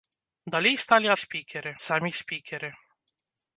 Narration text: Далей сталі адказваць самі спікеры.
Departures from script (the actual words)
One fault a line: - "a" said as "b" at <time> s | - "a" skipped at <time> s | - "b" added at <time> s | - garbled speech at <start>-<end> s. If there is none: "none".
- "адказваць" said as "спікеры" at 1.2 s